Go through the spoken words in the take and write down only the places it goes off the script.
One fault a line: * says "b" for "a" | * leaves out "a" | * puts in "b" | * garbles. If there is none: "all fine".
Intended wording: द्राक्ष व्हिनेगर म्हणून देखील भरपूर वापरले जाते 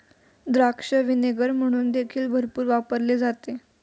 all fine